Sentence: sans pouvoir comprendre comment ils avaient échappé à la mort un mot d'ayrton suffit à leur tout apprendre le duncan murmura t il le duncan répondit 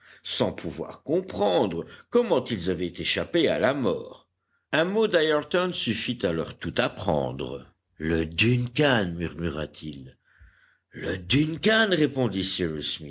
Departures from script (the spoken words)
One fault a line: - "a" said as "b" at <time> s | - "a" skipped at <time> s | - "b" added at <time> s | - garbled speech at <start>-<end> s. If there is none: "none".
none